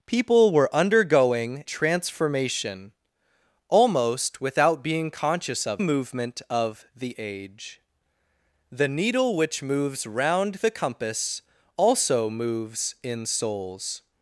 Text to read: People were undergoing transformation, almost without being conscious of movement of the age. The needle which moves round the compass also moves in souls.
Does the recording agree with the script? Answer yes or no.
yes